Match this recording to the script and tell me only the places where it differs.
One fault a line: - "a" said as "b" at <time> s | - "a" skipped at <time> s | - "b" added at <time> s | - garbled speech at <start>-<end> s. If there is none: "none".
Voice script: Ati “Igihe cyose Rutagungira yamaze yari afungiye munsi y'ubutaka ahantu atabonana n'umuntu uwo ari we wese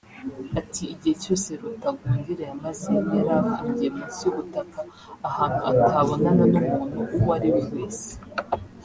none